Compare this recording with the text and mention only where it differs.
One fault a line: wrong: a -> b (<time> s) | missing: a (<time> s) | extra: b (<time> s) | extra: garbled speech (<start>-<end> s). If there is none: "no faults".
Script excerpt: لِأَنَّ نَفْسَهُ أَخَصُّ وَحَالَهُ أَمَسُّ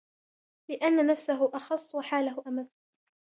no faults